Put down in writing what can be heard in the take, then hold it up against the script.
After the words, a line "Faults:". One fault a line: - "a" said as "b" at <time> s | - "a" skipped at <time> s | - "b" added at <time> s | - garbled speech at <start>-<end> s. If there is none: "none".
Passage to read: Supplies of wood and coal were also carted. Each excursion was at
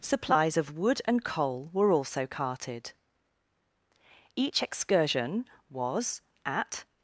Supplies of wood and coal were also carted. Each excursion was at
Faults:
none